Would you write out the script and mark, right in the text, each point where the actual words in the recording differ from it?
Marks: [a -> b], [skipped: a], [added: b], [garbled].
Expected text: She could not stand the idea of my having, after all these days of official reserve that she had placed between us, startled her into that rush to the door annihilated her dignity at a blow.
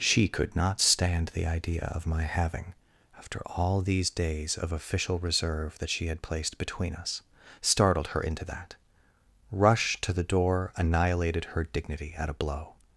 She could not stand the idea of my having, after all these days of official reserve that she had placed between us, startled her into that rush to the door annihilated her dignity at a blow.